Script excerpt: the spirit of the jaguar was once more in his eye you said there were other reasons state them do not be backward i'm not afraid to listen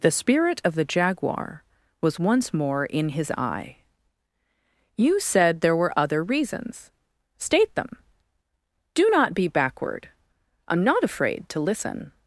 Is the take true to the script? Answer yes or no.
yes